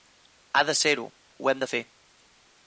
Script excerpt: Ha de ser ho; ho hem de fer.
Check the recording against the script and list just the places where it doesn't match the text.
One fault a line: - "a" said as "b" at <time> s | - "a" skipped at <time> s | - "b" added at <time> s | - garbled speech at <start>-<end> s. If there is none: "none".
none